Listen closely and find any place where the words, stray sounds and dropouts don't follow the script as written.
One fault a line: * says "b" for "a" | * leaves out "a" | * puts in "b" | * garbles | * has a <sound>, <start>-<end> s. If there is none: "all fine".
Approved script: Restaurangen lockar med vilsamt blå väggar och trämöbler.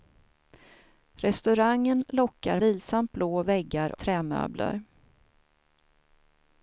* leaves out "med"
* leaves out "och"